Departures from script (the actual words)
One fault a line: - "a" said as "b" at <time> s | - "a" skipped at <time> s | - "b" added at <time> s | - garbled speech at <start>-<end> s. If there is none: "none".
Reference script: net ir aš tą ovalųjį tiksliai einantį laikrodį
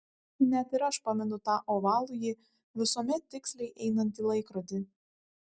- "pamenu" added at 1.1 s
- "visuomet" added at 2.8 s